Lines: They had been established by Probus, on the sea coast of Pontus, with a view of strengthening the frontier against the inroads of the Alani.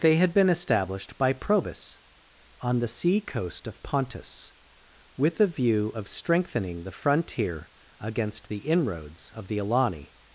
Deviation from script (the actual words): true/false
false